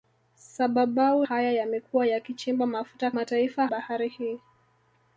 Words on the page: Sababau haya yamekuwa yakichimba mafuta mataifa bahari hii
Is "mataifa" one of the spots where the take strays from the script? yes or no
no